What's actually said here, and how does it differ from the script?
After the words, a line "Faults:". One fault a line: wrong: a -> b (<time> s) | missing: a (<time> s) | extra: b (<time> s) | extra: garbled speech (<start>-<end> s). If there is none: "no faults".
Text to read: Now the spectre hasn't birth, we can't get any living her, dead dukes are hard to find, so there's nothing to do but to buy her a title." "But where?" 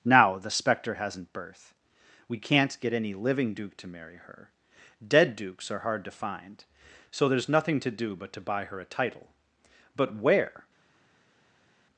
Now the spectre hasn't birth, we can't get any living duke to marry her, dead dukes are hard to find, so there's nothing to do but to buy her a title." "But where?"
Faults:
extra: duke to marry (3.5 s)